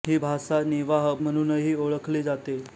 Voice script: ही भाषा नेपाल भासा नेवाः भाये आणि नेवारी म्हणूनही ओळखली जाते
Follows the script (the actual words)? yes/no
no